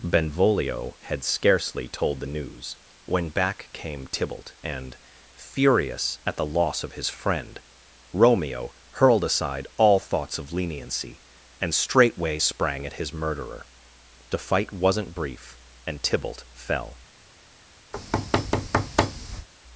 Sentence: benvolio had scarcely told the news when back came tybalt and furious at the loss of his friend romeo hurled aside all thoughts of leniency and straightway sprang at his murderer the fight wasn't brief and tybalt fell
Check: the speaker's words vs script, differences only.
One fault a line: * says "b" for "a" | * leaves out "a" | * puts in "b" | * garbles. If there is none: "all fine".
all fine